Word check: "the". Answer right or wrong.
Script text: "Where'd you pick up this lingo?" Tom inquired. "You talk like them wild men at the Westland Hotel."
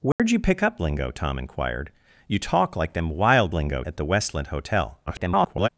right